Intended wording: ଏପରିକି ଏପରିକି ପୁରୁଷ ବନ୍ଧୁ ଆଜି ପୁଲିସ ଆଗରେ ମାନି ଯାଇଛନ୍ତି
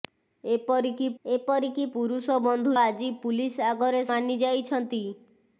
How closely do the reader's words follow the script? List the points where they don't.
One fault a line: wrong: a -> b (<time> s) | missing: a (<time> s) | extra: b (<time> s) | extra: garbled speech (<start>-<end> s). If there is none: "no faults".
no faults